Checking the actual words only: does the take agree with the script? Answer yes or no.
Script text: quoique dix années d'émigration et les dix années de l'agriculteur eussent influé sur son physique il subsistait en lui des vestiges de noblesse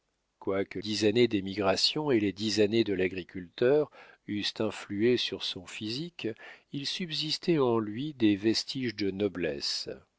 yes